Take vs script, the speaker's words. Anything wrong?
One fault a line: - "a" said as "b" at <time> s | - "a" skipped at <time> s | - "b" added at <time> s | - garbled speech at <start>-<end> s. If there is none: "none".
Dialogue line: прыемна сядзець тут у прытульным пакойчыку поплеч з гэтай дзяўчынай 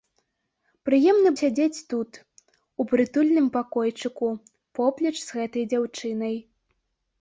none